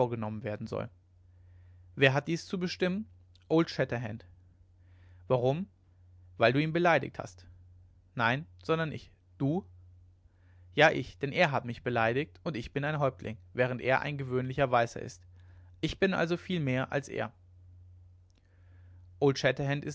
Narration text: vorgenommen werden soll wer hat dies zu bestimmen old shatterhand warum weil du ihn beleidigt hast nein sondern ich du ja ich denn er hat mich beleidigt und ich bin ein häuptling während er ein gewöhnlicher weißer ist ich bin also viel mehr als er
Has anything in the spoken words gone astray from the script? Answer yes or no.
no